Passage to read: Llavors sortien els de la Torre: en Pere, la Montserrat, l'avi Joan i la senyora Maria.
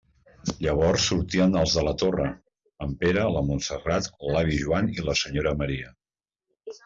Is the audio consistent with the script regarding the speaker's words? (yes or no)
yes